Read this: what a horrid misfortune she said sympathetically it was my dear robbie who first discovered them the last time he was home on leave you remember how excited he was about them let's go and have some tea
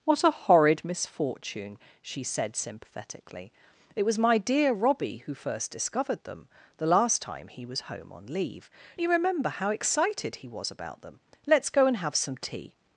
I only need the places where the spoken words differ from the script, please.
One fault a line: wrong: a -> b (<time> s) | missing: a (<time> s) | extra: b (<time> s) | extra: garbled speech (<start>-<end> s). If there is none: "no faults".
no faults